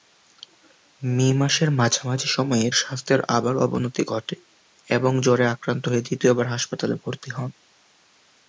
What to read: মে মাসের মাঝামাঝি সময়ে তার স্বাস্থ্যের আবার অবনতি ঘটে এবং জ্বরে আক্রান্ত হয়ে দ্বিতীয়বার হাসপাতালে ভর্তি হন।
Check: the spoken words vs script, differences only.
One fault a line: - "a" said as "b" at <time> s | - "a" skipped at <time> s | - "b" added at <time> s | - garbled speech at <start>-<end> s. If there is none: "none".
- "তার" skipped at 2.7 s